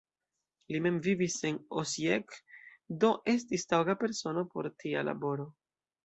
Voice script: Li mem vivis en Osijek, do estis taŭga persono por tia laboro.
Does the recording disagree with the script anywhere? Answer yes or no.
no